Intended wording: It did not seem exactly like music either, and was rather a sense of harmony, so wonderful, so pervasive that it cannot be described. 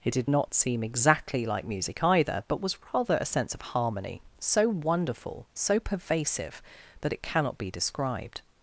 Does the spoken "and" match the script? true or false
false